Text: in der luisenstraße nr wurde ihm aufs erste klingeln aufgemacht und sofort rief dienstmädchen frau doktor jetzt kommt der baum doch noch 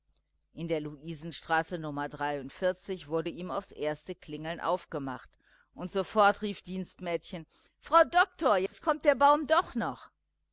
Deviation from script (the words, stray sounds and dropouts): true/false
true